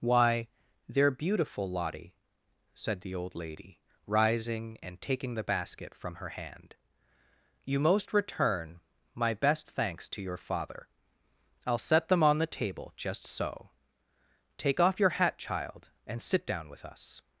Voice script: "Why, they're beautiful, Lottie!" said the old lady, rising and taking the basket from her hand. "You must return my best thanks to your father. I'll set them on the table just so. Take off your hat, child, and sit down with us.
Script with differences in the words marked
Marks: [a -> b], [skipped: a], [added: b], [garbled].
"Why, they're beautiful, Lottie!" said the old lady, rising and taking the basket from her hand. "You [must -> most] return my best thanks to your father. I'll set them on the table just so. Take off your hat, child, and sit down with us.